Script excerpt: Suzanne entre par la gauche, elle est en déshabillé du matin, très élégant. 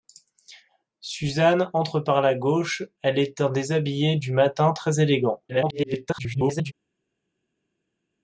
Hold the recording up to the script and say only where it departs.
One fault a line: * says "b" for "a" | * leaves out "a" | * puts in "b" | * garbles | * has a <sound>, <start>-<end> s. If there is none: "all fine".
* garbles